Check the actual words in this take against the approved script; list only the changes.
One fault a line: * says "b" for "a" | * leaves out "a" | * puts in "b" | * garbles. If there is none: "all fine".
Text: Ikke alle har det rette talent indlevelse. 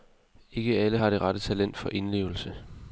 * puts in "for"